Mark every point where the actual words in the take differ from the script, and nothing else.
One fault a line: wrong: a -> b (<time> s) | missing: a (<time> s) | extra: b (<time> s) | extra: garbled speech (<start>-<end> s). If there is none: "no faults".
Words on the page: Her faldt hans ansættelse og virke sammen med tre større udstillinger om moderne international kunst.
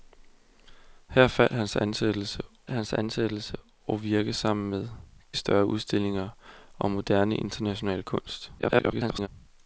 extra: hans ansættelse (2.7 s)
missing: tre (4.9 s)
extra: garbled speech (8.6-9.3 s)